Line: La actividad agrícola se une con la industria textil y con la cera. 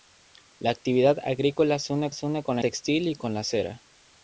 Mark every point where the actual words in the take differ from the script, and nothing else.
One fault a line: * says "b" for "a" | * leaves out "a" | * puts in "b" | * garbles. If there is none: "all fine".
* puts in "se une"
* leaves out "industria"